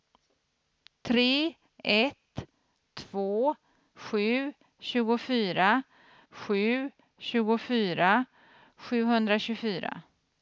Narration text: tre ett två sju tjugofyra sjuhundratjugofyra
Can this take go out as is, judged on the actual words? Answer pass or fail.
fail